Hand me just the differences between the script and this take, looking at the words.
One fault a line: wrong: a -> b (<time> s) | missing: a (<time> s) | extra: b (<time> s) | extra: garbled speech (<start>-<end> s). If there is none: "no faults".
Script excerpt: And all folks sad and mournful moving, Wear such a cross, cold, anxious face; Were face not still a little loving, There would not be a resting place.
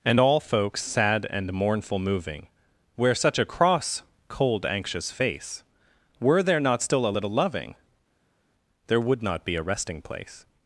wrong: face -> there (6.4 s)